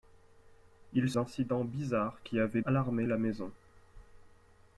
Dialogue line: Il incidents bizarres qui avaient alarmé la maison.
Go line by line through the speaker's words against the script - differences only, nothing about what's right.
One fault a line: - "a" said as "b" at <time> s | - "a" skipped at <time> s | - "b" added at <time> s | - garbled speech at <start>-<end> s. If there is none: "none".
none